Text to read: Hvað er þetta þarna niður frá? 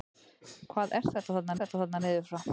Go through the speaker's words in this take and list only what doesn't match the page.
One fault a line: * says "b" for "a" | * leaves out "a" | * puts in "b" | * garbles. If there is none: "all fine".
* puts in "þetta þarna"